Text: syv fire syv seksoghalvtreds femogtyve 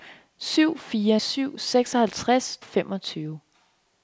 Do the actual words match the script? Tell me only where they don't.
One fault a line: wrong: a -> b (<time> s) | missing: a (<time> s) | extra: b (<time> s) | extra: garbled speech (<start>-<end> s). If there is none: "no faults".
no faults